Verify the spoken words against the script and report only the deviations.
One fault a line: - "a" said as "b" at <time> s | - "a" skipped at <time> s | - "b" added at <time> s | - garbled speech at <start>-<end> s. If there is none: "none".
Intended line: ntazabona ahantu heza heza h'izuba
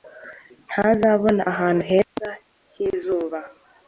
- "heza" skipped at 2.3 s